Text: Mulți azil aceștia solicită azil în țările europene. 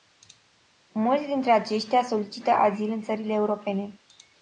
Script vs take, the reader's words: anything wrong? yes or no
yes